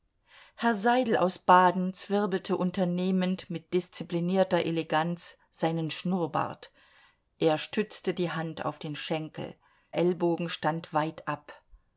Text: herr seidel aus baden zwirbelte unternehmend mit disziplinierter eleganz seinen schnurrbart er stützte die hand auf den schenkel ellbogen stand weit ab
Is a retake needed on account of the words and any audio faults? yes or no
no